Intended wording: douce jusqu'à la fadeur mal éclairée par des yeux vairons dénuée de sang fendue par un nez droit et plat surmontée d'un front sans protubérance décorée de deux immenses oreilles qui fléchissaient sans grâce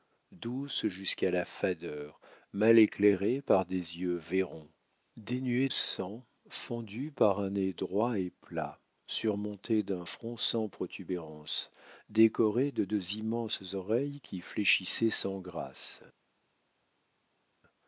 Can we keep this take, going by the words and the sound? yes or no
no